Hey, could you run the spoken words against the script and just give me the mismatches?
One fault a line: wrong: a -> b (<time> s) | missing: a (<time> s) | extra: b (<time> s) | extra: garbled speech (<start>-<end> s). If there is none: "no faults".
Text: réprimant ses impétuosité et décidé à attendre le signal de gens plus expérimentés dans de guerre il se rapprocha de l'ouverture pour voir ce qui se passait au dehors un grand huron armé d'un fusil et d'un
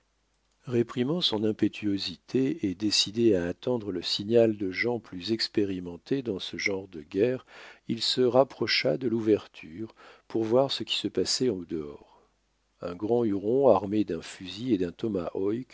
wrong: ses -> son (1.2 s)
extra: ce genre (6.4 s)